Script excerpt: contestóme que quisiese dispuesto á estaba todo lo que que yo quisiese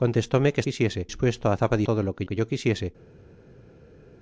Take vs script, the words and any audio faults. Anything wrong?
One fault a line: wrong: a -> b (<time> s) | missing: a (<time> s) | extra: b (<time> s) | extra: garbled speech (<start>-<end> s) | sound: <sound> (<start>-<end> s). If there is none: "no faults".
no faults